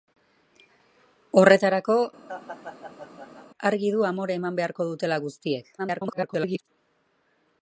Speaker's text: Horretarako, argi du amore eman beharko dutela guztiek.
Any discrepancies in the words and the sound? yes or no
yes